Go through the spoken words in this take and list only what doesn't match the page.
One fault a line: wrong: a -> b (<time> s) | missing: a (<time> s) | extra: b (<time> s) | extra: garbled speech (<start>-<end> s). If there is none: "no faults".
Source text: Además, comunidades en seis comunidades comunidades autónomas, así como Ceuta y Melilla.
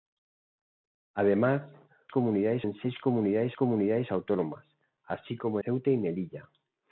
no faults